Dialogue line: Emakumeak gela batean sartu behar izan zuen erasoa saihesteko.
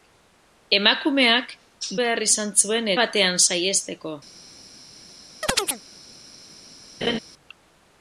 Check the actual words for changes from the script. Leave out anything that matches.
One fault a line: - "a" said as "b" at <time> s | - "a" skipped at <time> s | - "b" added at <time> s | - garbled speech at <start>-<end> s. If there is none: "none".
- "gela batean sartu" skipped at 1.5 s
- "erasoa" said as "batean" at 3.0 s